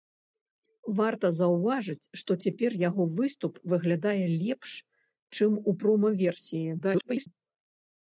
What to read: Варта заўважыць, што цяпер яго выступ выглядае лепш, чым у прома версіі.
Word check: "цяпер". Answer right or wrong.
right